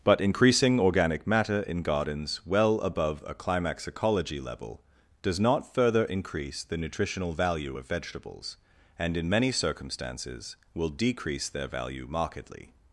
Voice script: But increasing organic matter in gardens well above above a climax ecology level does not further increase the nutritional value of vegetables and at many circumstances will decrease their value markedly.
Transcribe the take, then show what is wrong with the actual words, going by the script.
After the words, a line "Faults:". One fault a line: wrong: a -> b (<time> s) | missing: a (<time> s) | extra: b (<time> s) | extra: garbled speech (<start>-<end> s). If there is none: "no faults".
But increasing organic matter in gardens well above a climax ecology level does not further increase the nutritional value of vegetables and in many circumstances will decrease their value markedly.
Faults:
missing: above (3.2 s)
wrong: at -> in (9.2 s)